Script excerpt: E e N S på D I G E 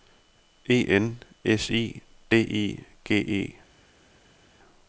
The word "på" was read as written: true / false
false